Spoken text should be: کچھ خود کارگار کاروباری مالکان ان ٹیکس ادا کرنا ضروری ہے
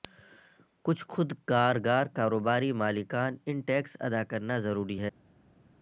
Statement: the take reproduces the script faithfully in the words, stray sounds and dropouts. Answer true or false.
true